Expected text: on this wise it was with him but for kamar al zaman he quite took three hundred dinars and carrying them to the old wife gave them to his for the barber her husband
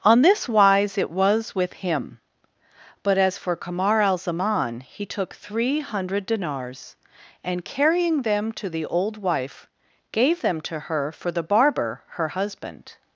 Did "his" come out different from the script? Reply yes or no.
yes